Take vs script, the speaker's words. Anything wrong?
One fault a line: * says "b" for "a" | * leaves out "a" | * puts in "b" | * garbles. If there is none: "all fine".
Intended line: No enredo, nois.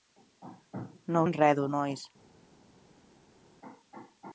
all fine